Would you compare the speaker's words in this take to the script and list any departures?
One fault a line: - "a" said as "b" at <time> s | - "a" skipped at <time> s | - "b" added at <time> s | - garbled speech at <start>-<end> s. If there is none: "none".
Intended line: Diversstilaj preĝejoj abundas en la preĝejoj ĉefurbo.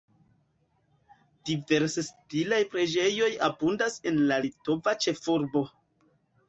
- "preĝejoj" said as "litova" at 4.5 s